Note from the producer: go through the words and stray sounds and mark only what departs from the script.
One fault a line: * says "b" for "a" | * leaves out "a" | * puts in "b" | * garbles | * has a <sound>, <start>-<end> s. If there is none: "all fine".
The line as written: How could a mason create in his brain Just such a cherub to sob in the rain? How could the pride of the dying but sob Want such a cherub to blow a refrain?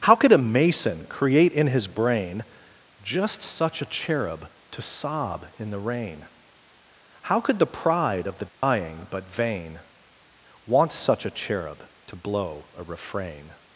* has a dropout, 8.5-8.6 s
* says "vain" for "sob"